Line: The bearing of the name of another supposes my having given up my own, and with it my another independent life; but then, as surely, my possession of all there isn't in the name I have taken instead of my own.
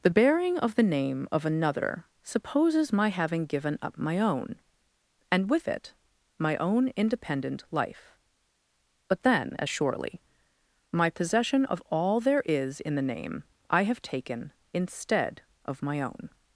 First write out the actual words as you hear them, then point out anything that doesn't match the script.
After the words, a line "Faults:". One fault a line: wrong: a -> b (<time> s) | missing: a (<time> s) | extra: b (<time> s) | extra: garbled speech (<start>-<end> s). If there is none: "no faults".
The bearing of the name of another supposes my having given up my own, and with it my own independent life; but then, as surely, my possession of all there is in the name I have taken instead of my own.
Faults:
wrong: another -> own (6.6 s)
wrong: isn't -> is (12.4 s)